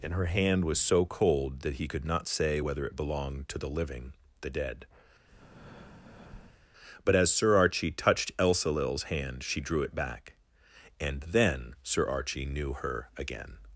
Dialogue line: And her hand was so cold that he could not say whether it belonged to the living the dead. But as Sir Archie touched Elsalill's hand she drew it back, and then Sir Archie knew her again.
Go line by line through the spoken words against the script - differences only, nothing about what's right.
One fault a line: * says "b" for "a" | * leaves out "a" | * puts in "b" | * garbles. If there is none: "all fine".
all fine